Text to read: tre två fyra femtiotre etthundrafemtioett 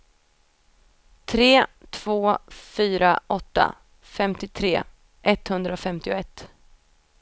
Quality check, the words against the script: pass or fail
fail